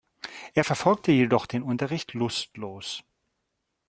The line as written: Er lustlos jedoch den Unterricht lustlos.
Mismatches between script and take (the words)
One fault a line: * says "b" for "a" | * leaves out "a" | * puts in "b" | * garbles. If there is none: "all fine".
* says "verfolgte" for "lustlos"